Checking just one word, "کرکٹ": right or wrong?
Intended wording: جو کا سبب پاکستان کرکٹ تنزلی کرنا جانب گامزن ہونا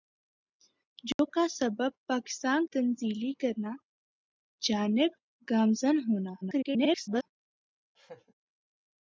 wrong